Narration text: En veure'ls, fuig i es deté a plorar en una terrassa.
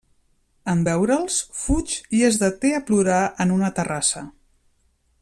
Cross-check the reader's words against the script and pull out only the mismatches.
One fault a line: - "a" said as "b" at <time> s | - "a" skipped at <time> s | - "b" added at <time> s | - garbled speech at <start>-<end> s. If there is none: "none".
none